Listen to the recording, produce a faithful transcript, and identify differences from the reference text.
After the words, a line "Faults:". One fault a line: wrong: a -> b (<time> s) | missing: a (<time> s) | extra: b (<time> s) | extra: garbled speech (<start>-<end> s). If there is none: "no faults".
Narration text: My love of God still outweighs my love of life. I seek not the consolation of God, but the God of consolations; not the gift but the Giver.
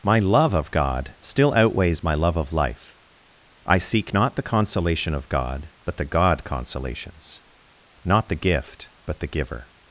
My love of God still outweighs my love of life. I seek not the consolation of God, but the God consolations; not the gift but the Giver.
Faults:
missing: of (6.4 s)